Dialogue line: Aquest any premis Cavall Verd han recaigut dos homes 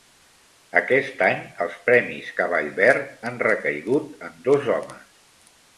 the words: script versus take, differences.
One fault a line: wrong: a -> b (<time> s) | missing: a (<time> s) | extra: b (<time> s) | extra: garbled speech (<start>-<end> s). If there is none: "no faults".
extra: els (1.7 s)
extra: en (4.3 s)